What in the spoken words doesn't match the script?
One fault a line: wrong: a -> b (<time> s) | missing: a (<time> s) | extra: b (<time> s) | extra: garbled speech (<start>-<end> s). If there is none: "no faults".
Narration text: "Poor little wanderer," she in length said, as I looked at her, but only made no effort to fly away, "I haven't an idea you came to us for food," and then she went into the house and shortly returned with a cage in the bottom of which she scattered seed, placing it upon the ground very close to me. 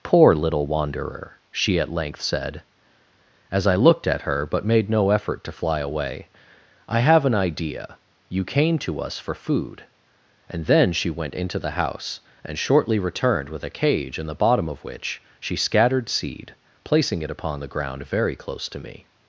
wrong: in -> at (1.8 s)
missing: only (4.7 s)
wrong: haven't -> have (7.0 s)